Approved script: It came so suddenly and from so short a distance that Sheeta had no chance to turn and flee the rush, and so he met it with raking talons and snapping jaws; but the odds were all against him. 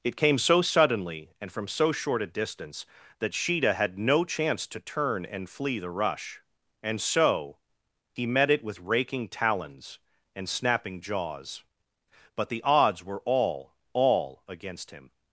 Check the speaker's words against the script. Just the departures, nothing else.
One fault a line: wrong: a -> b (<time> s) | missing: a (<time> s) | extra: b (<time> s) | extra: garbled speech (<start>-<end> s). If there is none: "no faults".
extra: all (13.9 s)